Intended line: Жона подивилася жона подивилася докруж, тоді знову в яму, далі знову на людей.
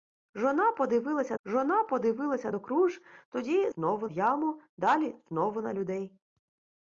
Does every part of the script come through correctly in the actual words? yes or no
yes